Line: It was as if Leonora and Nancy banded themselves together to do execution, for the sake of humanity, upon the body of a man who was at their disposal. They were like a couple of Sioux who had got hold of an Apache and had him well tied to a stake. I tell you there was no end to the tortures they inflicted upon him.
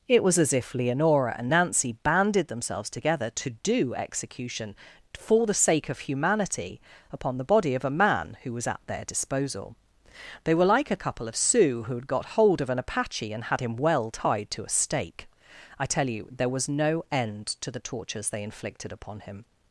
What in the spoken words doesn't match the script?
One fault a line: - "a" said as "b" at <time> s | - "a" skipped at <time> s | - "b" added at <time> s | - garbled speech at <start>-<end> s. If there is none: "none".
none